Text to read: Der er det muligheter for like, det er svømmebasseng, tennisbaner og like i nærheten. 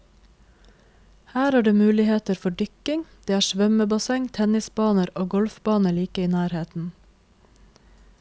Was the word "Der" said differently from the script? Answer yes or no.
yes